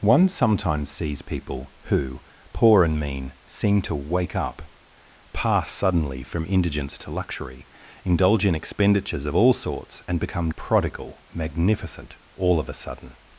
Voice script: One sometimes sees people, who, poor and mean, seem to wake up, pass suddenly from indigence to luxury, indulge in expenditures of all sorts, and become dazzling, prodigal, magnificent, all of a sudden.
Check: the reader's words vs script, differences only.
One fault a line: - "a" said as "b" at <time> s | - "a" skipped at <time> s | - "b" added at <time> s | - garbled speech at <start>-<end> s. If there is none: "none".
- "dazzling" skipped at 10.5 s